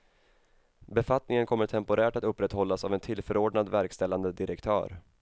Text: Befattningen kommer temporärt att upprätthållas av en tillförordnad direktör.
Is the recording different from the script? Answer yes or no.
yes